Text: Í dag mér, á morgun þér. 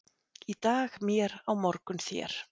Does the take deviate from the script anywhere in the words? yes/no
no